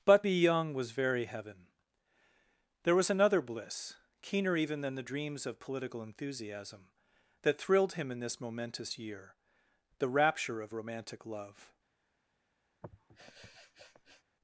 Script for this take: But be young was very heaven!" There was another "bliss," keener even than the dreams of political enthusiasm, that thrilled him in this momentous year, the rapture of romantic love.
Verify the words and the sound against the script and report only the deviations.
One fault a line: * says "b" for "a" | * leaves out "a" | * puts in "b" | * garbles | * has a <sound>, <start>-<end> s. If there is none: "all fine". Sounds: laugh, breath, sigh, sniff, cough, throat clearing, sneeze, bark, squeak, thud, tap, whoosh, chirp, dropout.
* has a sniff, 12.8-14.2 s